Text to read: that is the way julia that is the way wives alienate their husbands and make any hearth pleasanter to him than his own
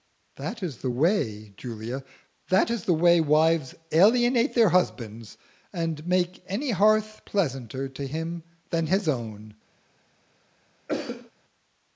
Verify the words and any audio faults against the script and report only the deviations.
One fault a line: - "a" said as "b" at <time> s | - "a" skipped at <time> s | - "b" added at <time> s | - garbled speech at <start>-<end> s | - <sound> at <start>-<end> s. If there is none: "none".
- cough at 10.9-11.3 s